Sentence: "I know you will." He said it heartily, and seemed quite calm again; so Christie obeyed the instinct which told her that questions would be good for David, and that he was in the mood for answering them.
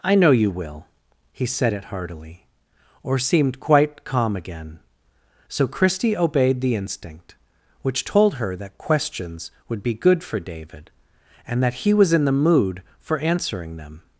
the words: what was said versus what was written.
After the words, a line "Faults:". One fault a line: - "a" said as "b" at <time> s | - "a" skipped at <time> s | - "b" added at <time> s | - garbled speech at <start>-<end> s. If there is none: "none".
"I know you will." He said it heartily, or seemed quite calm again; so Christie obeyed the instinct which told her that questions would be good for David, and that he was in the mood for answering them.
Faults:
- "and" said as "or" at 3.0 s